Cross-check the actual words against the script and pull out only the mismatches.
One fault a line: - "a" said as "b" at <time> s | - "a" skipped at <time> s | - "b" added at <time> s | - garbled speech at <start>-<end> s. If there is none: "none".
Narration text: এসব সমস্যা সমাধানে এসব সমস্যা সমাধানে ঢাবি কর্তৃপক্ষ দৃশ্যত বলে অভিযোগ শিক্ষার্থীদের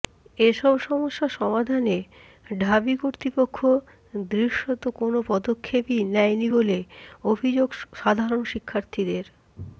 - "এসব সমস্যা সমাধানে ঢাবি কর্তৃপক্ষ দৃশ্যত" said as "ঢাবি কর্তৃপক্ষ দৃশ্যত কোনো পদক্ষেপই নেয়নি" at 2.6 s
- "সাধারণ" added at 7.9 s